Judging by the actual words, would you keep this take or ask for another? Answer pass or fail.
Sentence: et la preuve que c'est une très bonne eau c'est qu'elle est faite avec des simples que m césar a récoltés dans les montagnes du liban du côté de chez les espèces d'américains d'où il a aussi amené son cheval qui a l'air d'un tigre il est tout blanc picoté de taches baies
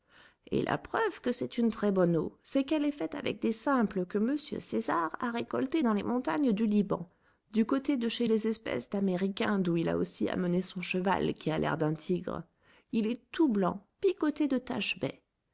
pass